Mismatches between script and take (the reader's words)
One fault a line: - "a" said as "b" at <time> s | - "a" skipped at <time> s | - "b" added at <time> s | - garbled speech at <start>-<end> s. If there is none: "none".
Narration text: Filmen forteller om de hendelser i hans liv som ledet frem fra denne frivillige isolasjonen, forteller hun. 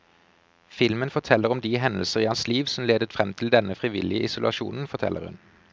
- "fra" said as "til" at 3.3 s